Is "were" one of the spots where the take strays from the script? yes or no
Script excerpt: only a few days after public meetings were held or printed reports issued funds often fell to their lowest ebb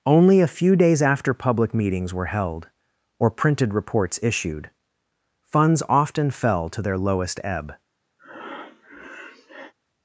no